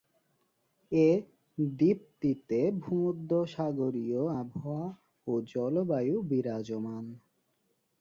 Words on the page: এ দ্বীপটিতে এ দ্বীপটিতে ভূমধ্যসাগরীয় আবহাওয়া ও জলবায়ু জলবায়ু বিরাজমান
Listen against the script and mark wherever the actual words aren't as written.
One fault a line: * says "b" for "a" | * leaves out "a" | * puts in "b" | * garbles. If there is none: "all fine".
* leaves out "এ দ্বীপটিতে"
* leaves out "জলবায়ু"